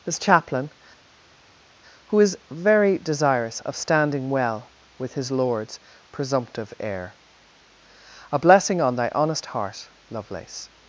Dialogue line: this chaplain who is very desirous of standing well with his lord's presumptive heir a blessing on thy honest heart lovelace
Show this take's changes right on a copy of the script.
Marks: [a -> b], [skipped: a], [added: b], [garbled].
this chaplain who is very desirous of standing well with his lord's presumptive heir a blessing on thy honest heart lovelace